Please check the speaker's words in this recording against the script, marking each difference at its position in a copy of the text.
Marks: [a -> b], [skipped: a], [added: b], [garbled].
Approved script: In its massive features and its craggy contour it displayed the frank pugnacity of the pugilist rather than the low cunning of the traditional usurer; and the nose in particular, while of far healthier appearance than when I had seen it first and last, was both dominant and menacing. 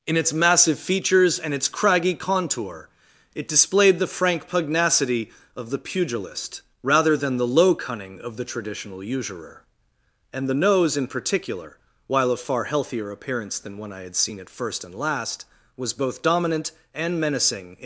In its massive features and its craggy contour it displayed the frank pugnacity of the pugilist rather than the low cunning of the traditional usurer; and the nose in particular, while of far healthier appearance than when I had seen it first and last, was both dominant and menacing.